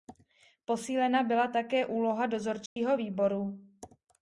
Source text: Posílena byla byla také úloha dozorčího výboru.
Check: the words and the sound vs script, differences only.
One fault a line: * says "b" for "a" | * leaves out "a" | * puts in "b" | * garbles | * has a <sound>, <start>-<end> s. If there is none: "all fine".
* leaves out "byla"
* has a dropout, 2.7-2.8 s